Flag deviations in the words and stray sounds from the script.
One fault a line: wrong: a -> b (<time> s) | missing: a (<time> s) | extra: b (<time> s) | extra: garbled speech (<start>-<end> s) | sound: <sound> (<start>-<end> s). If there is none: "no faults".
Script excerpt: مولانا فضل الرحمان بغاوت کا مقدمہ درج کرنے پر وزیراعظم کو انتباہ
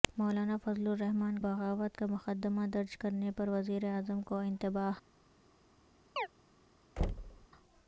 sound: chirp (6.2-6.3 s)
sound: thud (7.0-7.5 s)